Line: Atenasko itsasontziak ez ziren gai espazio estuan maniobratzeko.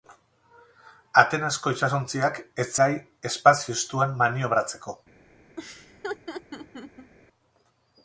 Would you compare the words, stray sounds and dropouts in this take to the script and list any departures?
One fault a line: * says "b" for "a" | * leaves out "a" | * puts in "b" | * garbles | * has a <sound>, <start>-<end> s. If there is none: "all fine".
* leaves out "ziren"
* has a laugh, 5.6-7.1 s